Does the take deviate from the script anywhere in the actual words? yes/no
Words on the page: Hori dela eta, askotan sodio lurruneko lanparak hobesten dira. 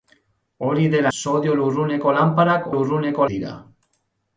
yes